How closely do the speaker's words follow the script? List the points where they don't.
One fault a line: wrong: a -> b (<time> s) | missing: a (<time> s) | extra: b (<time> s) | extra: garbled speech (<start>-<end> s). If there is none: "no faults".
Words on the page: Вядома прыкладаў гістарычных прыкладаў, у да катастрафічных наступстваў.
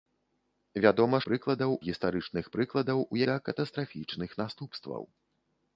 no faults